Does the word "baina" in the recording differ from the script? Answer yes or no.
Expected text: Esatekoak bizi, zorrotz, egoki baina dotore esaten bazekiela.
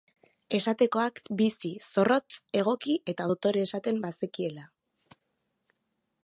yes